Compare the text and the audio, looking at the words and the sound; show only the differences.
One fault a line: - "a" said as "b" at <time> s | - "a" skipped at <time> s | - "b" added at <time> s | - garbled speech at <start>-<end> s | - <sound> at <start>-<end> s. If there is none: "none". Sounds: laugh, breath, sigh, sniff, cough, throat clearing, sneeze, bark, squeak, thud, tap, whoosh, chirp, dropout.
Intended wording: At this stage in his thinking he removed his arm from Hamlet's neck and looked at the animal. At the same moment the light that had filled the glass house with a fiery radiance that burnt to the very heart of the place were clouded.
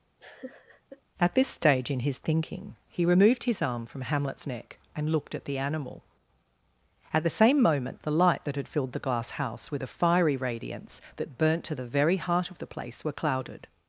- laugh at 0.2-1.0 s